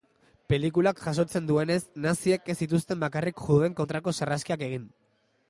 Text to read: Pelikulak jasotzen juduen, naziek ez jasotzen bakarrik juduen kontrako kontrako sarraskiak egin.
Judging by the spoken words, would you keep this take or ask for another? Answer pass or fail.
fail